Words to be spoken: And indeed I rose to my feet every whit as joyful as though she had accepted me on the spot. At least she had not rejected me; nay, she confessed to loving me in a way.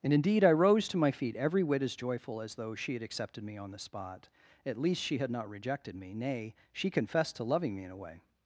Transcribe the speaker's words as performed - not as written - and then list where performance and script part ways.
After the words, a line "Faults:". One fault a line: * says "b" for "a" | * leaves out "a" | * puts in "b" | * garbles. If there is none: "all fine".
And indeed I rose to my feet every whit as joyful as though she had accepted me on the spot. At least she had not rejected me; nay, she confessed to loving me in a way.
Faults:
all fine